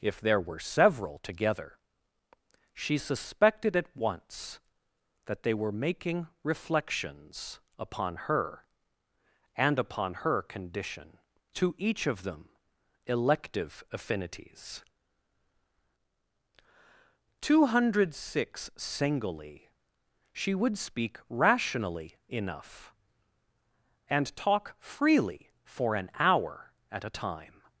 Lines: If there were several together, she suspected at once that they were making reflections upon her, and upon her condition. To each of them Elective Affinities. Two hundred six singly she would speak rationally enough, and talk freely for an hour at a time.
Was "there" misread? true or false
false